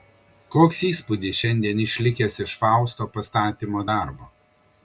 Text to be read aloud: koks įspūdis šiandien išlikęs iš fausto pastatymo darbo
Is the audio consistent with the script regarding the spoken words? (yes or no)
yes